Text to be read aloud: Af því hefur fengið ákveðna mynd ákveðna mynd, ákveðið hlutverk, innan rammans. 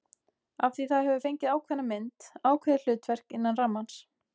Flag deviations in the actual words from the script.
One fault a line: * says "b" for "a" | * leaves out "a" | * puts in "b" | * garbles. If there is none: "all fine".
* puts in "það"
* leaves out "ákveðna mynd"